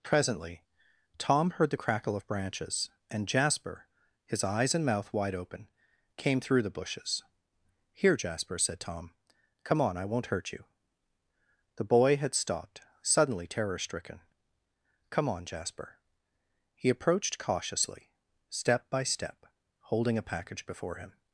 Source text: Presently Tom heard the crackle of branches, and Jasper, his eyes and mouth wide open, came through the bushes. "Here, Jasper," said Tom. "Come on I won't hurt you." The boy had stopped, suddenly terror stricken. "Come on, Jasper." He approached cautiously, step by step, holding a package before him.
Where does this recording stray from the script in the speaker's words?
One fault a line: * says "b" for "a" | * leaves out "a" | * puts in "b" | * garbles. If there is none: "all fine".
all fine